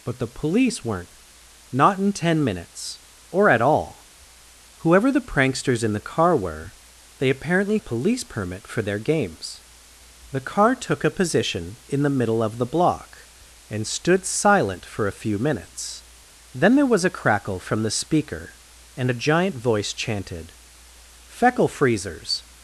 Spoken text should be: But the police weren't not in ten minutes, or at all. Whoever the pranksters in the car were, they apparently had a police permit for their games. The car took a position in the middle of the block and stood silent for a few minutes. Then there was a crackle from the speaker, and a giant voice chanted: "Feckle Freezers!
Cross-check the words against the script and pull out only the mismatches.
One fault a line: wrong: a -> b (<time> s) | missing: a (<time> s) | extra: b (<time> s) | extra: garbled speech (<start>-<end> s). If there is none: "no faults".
missing: had (7.8 s)